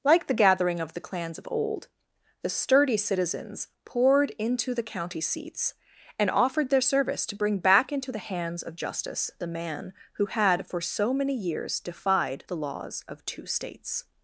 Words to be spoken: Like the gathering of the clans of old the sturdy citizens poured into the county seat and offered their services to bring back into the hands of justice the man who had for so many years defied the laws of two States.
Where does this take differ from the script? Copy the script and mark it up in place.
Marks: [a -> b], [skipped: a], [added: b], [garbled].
Like the gathering of the clans of old the sturdy citizens poured into the county [seat -> seats] and offered their [services -> service] to bring back into the hands of justice the man who had for so many years defied the laws of two States.